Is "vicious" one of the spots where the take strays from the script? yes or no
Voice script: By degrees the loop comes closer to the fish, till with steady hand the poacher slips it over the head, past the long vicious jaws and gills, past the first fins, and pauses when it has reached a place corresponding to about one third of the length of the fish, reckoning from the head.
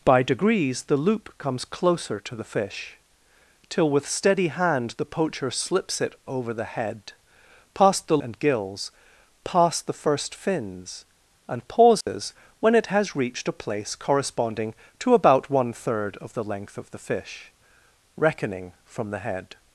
yes